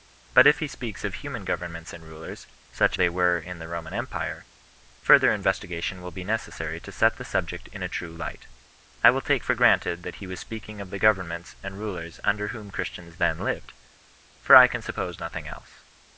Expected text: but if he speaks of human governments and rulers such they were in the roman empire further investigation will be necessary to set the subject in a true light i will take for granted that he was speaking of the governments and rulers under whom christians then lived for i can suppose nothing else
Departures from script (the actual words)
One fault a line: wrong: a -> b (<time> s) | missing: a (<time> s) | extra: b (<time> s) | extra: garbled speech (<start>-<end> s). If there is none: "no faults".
no faults